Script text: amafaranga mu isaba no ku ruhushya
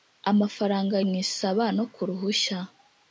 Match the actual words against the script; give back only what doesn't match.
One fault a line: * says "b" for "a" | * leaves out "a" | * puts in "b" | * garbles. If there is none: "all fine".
all fine